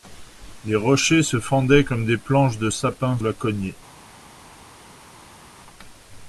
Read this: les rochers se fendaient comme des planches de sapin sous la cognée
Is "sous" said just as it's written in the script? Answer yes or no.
no